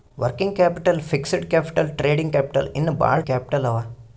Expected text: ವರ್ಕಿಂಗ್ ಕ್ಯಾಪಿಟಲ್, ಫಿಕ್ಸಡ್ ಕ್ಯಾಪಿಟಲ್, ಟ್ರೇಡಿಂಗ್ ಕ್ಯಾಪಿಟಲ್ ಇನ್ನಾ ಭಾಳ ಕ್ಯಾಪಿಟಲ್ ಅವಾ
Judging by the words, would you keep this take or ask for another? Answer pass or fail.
pass